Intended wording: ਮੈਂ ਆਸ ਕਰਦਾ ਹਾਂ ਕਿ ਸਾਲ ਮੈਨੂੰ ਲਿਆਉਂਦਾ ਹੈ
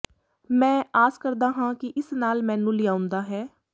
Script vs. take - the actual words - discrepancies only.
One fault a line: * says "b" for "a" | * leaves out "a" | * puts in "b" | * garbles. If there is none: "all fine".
* puts in "ਇਸ"